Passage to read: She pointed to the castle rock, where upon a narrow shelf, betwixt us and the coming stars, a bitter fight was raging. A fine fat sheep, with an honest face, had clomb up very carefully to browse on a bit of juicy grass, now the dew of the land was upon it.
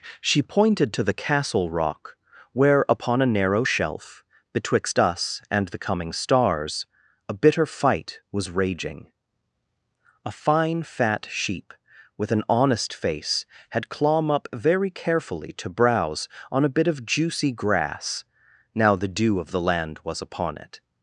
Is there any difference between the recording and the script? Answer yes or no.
no